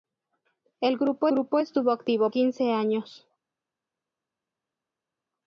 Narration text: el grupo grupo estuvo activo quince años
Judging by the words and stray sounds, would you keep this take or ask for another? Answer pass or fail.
pass